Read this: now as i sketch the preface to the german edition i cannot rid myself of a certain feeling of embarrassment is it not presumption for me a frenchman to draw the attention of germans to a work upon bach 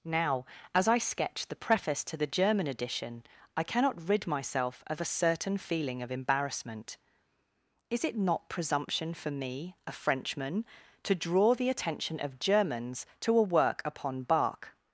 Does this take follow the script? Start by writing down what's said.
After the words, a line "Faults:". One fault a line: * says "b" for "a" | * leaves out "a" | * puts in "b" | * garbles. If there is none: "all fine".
now as i sketch the preface to the german edition i cannot rid myself of a certain feeling of embarrassment is it not presumption for me a frenchman to draw the attention of germans to a work upon bach
Faults:
all fine